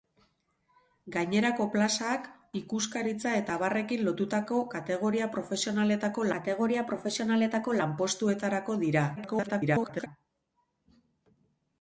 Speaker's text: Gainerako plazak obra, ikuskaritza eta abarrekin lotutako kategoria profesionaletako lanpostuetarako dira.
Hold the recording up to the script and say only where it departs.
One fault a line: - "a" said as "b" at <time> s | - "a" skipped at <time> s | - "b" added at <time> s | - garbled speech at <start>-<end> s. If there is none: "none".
- "obra" skipped at 2.2 s
- "kategoria profesionaletako" added at 6.4 s
- garbled speech at 9.2-10.1 s